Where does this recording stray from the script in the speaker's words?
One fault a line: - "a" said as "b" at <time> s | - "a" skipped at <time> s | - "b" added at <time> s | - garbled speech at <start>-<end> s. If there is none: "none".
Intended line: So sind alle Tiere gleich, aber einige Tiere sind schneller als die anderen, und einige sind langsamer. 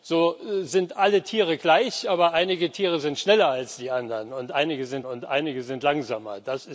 - "und einige sind" added at 5.1 s